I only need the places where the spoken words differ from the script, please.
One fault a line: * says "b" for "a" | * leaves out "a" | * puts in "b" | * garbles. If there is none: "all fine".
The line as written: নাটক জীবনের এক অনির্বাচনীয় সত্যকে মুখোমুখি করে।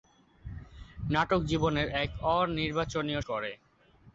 * leaves out "সত্যকে মুখোমুখি"